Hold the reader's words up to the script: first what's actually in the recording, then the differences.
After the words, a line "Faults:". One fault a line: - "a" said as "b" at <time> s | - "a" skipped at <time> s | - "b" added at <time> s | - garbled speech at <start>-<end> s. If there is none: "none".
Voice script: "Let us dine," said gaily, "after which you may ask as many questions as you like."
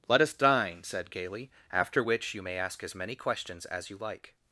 "Let us dine," said gaily, "after which you may ask as many questions as you like."
Faults:
none